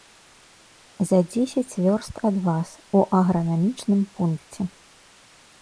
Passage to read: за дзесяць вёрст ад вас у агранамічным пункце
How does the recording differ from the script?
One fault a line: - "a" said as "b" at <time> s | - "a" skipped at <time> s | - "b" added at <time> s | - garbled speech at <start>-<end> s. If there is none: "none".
none